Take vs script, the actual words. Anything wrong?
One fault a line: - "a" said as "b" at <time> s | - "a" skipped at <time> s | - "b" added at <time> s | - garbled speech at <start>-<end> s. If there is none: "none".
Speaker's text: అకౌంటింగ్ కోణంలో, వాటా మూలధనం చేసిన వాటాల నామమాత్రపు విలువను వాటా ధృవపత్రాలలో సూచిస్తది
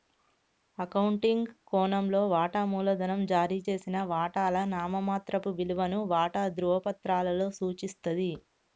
- "జారీ" added at 3.3 s